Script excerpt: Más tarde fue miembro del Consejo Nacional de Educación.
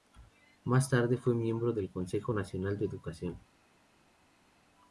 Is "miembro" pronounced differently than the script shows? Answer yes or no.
no